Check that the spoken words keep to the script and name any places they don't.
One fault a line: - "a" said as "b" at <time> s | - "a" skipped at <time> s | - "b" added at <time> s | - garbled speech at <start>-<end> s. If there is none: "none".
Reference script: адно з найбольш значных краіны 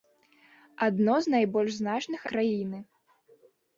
none